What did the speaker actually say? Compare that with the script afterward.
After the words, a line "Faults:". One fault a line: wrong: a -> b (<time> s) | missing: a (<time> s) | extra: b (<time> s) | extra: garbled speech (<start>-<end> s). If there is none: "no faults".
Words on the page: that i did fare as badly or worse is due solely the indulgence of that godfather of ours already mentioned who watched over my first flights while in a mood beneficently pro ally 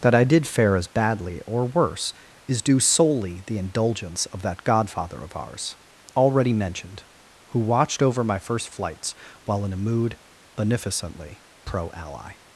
that i did fare as badly or worse is due solely the indulgence of that godfather of ours already mentioned who watched over my first flights while in a mood beneficently pro ally
Faults:
no faults